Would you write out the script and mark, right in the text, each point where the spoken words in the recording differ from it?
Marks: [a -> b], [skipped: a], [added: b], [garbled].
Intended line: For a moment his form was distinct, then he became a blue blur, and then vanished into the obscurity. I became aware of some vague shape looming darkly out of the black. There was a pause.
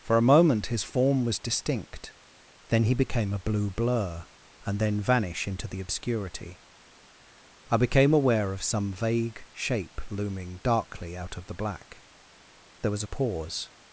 For a moment his form was distinct, then he became a blue blur, and then [vanished -> vanish] into the obscurity. I became aware of some vague shape looming darkly out of the black. There was a pause.